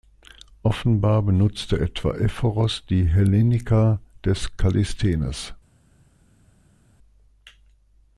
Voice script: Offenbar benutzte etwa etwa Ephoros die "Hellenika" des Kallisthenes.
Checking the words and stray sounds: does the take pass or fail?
fail